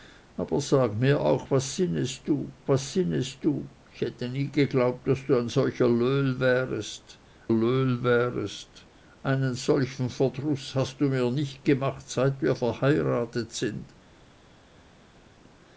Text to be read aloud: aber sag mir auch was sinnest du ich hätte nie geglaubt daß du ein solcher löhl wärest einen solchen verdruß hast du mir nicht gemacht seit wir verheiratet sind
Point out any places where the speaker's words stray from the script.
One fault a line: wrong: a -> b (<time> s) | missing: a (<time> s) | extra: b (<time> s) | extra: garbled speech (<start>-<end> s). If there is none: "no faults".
extra: was sinnest du (2.7 s)
extra: löhl wärest (7.5 s)